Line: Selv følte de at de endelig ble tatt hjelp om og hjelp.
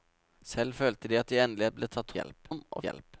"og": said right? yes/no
yes